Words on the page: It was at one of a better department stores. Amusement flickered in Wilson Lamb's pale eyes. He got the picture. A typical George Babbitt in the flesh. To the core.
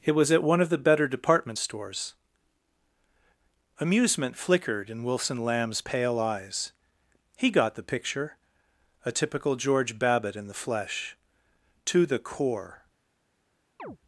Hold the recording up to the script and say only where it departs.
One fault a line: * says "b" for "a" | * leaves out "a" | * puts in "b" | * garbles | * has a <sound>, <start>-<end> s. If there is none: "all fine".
* says "the" for "a"
* has a chirp, 13.8-14.0 s